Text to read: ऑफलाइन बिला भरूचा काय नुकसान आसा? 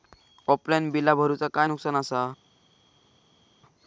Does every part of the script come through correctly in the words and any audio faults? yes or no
yes